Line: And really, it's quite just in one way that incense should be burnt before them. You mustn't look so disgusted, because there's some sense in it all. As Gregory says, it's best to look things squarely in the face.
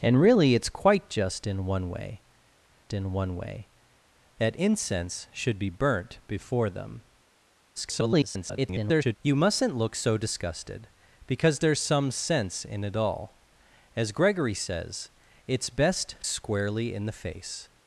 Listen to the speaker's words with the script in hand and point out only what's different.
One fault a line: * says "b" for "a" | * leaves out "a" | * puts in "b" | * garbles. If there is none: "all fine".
* puts in "in one way"
* garbles
* leaves out "to look things"